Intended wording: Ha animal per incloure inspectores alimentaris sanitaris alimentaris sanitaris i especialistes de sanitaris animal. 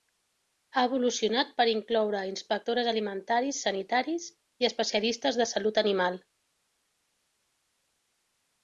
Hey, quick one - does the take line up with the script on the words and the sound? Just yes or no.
no